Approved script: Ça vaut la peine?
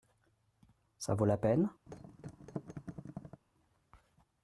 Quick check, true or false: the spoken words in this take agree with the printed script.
true